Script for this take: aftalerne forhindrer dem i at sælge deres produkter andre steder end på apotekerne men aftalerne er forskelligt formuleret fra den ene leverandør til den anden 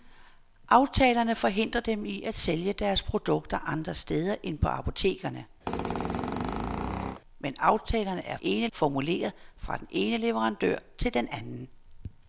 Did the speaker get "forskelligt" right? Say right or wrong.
wrong